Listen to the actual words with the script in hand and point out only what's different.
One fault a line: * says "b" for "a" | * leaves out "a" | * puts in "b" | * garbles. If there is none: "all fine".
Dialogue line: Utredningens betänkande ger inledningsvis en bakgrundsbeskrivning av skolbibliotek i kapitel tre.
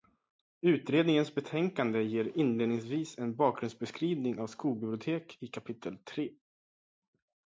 all fine